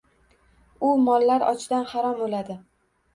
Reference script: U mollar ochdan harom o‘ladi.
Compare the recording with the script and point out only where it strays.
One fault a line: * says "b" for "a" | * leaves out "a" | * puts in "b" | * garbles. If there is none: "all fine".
all fine